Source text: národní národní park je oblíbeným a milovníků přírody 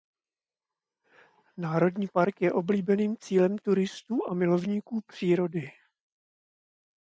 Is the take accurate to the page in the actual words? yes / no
no